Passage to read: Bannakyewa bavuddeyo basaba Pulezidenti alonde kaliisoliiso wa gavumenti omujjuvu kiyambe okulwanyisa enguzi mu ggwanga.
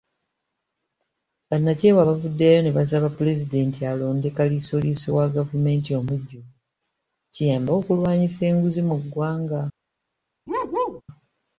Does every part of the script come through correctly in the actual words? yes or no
no